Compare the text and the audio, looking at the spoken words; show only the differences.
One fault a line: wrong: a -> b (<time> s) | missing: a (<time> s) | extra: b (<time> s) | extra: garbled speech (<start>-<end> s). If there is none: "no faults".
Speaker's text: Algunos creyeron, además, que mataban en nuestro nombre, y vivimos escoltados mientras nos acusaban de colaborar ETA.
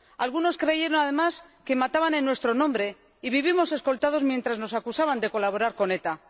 extra: con (5.8 s)